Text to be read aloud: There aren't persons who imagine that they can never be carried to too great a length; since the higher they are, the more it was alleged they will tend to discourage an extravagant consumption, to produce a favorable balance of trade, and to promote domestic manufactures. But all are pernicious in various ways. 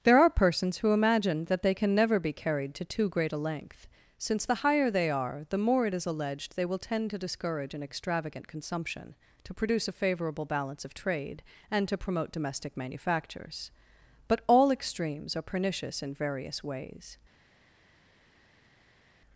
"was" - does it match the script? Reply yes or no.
no